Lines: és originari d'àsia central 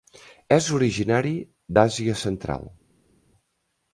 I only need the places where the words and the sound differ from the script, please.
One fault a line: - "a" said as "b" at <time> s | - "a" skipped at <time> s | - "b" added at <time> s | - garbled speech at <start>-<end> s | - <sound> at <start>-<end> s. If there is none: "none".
none